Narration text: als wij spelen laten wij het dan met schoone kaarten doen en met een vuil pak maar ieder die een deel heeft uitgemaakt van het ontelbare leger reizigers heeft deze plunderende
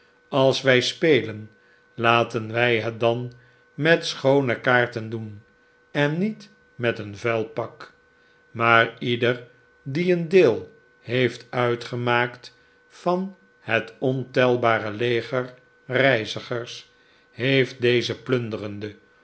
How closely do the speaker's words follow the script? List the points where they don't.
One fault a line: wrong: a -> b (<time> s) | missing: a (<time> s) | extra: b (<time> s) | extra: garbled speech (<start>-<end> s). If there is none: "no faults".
extra: niet (6.2 s)